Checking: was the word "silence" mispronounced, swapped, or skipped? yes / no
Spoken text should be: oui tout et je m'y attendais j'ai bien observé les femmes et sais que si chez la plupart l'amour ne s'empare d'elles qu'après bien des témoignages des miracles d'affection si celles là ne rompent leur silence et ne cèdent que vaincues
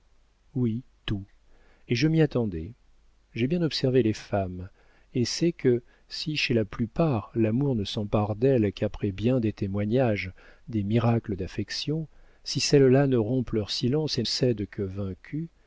no